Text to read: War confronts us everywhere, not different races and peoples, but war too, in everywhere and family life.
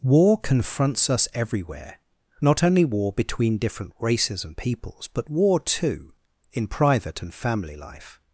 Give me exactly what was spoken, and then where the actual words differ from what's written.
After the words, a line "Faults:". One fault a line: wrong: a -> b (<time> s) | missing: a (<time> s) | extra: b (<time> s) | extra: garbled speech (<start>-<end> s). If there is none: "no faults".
War confronts us everywhere, not only war between different races and peoples, but war too, in private and family life.
Faults:
extra: only war between (2.6 s)
wrong: everywhere -> private (6.7 s)